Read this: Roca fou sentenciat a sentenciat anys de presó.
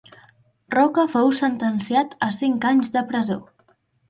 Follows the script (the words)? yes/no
no